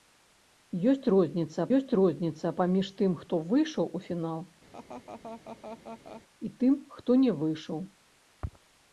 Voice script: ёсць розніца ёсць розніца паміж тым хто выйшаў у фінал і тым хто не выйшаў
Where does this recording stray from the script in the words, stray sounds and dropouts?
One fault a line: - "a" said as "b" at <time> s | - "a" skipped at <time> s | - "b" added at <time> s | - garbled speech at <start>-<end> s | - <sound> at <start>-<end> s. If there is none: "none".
- laugh at 4.7-6.2 s